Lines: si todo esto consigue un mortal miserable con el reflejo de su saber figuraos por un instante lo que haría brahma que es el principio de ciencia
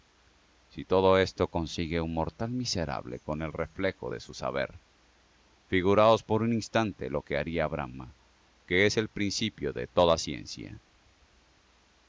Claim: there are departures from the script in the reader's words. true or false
true